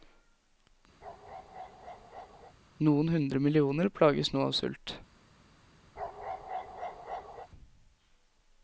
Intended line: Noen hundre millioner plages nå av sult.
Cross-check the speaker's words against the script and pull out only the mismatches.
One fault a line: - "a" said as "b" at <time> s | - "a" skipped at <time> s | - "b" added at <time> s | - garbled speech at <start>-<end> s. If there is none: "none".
none